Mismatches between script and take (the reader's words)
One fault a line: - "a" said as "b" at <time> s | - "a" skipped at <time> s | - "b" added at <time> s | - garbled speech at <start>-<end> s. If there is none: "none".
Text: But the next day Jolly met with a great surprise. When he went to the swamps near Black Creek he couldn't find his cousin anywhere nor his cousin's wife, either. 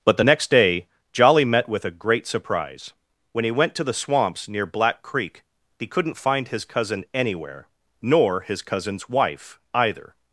none